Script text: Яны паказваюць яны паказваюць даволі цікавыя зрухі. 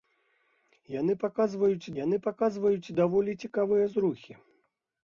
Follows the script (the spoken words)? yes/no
yes